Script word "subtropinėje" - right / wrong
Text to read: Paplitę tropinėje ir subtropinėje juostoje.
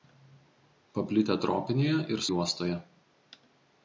wrong